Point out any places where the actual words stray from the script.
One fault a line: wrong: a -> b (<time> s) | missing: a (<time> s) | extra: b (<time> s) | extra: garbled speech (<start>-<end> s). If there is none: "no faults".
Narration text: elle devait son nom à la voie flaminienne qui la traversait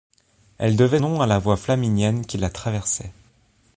missing: son (1.0 s)